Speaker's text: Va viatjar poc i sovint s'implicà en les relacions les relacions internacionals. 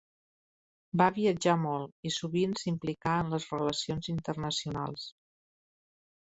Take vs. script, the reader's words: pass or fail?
fail